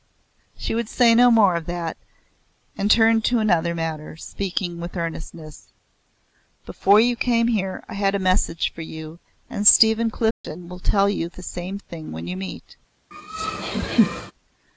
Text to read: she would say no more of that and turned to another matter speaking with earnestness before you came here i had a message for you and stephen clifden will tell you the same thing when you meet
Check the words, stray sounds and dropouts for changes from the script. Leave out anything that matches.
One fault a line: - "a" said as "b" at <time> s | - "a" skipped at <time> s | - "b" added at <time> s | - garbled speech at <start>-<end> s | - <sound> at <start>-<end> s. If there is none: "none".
- dropout at 10.3-10.4 s
- laugh at 13.1-14.3 s